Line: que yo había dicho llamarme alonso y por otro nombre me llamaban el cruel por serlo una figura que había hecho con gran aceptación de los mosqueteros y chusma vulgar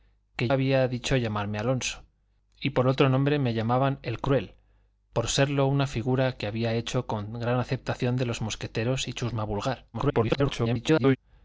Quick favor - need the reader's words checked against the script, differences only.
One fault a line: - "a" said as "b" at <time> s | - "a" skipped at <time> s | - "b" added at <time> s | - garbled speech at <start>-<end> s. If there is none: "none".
- "yo" skipped at 0.5 s
- garbled speech at 9.9-11.2 s